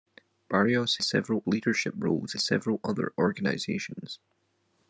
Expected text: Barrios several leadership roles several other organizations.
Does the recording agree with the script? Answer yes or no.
yes